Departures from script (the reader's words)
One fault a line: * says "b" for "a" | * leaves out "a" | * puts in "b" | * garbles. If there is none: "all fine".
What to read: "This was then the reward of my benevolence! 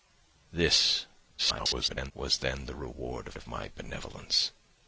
* garbles
* puts in "of"